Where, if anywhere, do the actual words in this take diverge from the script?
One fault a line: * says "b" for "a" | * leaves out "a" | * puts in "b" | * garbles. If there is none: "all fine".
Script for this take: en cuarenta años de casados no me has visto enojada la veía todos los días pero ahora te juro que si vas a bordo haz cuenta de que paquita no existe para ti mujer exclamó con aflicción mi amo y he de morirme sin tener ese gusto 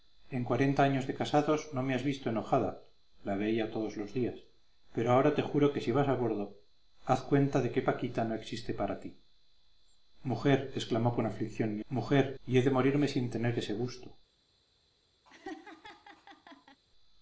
* says "mujer" for "amo"